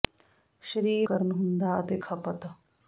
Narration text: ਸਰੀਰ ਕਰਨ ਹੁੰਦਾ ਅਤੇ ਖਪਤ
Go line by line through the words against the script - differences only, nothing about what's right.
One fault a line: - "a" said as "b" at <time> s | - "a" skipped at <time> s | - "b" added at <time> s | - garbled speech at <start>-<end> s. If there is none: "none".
none